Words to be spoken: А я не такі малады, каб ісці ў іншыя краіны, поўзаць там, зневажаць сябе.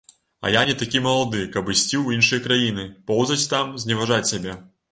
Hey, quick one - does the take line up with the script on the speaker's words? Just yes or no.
yes